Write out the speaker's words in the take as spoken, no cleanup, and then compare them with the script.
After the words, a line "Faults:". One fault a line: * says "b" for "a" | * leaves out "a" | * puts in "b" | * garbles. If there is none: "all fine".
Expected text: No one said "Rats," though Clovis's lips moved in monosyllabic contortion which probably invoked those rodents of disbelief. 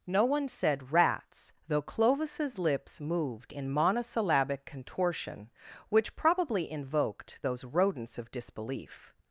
No one said "Rats," though Clovis's lips moved in monosyllabic contortion which probably invoked those rodents of disbelief.
Faults:
all fine